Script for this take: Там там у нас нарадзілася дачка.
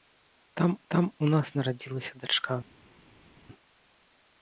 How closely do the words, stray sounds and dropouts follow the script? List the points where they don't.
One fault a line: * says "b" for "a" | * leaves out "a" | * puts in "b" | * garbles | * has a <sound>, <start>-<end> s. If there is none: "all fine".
all fine